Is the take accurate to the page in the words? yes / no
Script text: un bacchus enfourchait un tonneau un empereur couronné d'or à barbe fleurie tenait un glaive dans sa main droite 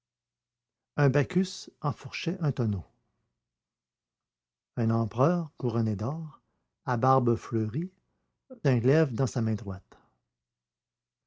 no